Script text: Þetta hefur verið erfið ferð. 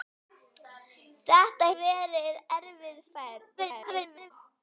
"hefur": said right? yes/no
no